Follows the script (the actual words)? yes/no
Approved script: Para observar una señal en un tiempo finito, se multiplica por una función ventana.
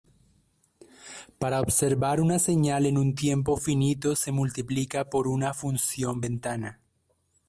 yes